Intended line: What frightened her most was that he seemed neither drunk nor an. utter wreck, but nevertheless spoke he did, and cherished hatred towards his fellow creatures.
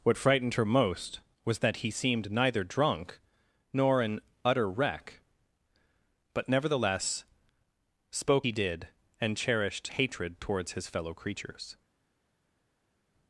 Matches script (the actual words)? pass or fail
pass